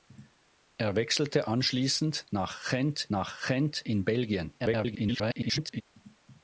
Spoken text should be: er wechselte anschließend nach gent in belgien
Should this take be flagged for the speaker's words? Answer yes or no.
yes